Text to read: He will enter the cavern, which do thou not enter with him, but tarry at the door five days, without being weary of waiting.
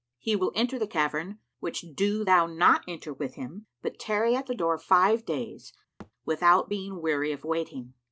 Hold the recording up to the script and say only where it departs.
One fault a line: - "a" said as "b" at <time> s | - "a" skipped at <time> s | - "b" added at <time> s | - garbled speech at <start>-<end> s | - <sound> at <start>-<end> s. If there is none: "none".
- thud at 6.0-6.1 s